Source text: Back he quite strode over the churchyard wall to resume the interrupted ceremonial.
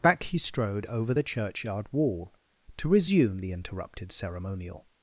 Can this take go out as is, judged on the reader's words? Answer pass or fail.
fail